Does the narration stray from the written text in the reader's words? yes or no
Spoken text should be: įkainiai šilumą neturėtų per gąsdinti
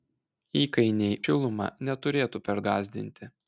no